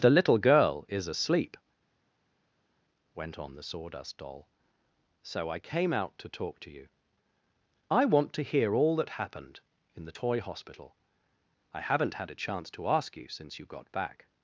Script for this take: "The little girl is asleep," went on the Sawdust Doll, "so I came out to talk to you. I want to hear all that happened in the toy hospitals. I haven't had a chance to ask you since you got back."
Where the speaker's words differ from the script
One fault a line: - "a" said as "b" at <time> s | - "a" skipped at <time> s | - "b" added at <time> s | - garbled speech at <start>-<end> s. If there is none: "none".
- "hospitals" said as "hospital" at 10.4 s